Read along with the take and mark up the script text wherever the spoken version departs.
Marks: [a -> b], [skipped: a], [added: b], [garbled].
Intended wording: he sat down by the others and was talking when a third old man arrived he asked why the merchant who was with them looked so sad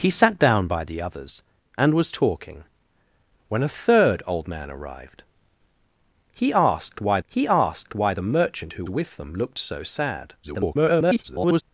he sat down by the others and was talking when a third old man arrived he asked why [added: he asked why] the merchant who [skipped: was] with them looked so sad [garbled]